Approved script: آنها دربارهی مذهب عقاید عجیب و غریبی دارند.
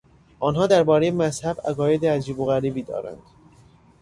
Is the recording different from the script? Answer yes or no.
no